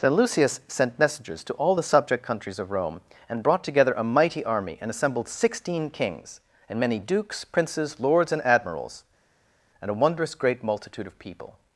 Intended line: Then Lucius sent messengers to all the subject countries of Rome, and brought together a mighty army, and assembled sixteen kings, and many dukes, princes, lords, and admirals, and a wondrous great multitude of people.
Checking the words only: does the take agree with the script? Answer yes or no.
yes